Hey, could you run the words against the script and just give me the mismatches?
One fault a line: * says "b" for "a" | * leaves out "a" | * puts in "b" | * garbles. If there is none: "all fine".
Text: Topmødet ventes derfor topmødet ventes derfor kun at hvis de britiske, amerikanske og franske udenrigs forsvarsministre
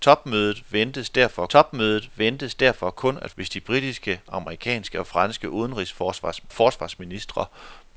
all fine